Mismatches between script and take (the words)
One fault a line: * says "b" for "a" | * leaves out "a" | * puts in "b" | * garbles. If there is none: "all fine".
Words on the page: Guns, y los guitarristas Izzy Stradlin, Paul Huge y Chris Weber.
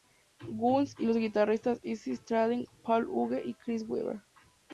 all fine